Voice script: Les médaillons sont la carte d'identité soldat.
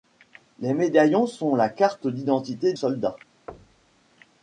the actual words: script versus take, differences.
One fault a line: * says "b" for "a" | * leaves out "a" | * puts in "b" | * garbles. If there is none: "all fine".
all fine